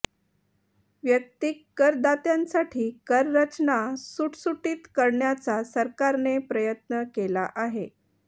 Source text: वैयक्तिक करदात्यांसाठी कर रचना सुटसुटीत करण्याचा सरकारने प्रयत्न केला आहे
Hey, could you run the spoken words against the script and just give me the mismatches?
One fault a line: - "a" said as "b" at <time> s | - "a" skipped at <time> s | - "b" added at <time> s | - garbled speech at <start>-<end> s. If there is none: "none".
none